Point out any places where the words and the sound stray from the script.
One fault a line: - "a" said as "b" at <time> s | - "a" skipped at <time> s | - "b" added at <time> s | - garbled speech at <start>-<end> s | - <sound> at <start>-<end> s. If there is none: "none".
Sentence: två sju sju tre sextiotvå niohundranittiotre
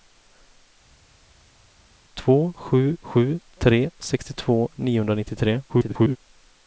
- garbled speech at 5.7-6.2 s